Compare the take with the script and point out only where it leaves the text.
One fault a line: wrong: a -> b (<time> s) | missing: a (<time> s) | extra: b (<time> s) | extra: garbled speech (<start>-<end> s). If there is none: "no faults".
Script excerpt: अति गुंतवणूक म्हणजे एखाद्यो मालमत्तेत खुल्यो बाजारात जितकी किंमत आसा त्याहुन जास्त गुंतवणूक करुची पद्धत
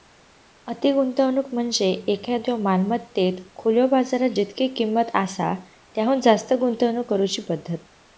no faults